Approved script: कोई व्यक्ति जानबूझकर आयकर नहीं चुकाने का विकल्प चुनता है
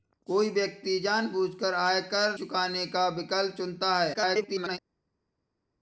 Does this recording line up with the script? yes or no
no